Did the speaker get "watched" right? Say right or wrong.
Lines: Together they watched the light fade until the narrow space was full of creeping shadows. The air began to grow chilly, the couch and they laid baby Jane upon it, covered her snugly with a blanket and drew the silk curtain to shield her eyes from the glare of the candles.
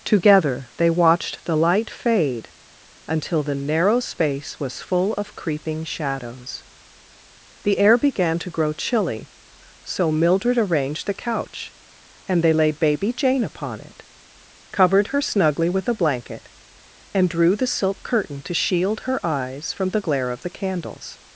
right